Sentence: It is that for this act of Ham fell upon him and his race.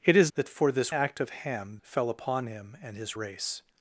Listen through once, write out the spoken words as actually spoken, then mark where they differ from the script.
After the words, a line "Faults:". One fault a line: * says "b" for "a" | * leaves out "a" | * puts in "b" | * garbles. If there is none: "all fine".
It is that for this act of Ham fell upon him and his race.
Faults:
all fine